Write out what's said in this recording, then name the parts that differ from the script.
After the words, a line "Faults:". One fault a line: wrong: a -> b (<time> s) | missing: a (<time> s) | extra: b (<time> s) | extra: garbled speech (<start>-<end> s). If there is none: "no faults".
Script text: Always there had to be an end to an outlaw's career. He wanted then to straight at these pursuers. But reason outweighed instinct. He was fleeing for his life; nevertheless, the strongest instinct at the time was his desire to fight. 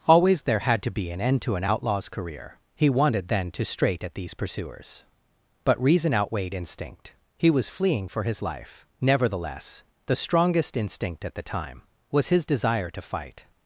Always there had to be an end to an outlaw's career. He wanted then to straight at these pursuers. But reason outweighed instinct. He was fleeing for his life; nevertheless, the strongest instinct at the time was his desire to fight.
Faults:
no faults